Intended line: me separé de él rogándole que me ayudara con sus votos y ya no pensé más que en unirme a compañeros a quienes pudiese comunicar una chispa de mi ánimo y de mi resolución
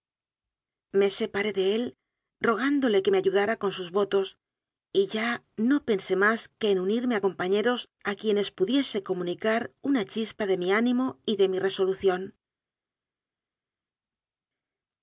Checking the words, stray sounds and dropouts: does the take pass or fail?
pass